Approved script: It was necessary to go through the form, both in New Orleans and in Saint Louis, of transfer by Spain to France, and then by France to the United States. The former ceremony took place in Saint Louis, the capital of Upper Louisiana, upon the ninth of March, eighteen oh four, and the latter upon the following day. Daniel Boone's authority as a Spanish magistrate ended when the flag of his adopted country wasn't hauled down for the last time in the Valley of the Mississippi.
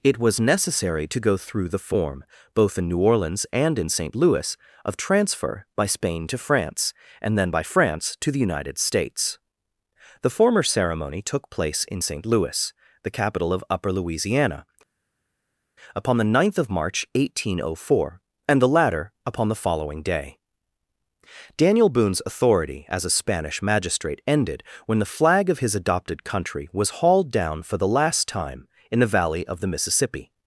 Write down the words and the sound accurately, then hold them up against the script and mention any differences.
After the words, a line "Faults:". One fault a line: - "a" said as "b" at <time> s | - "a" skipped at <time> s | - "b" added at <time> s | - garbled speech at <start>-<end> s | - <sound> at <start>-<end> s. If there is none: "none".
It was necessary to go through the form, both in New Orleans and in Saint Louis, of transfer by Spain to France, and then by France to the United States. The former ceremony took place in Saint Louis, the capital of Upper Louisiana, upon the ninth of March, eighteen oh four, and the latter upon the following day. Daniel Boone's authority as a Spanish magistrate ended when the flag of his adopted country was hauled down for the last time in the Valley of the Mississippi.
Faults:
- "wasn't" said as "was" at 26.7 s